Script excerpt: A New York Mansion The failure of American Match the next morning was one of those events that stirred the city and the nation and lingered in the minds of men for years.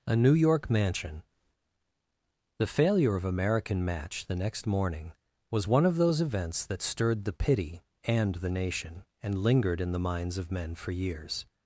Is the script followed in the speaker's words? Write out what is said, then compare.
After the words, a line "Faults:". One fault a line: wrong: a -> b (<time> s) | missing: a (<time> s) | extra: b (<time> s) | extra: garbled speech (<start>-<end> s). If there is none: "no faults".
A New York Mansion The failure of American Match the next morning was one of those events that stirred the pity and the nation and lingered in the minds of men for years.
Faults:
wrong: city -> pity (7.3 s)